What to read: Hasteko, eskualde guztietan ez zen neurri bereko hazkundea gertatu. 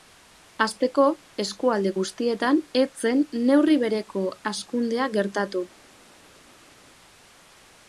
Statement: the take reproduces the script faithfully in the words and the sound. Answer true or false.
true